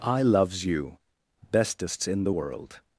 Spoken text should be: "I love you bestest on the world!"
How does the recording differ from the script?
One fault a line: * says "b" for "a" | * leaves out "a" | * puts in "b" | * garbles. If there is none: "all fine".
* says "loves" for "love"
* says "in" for "on"